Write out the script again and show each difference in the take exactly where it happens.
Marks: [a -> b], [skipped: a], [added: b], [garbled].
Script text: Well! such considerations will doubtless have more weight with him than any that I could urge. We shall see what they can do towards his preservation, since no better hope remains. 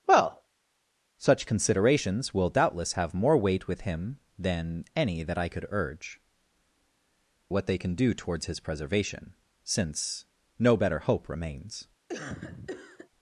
Well! such considerations will doubtless have more weight with him than any that I could urge. [skipped: We shall see] what they can do towards his preservation, since no better hope remains.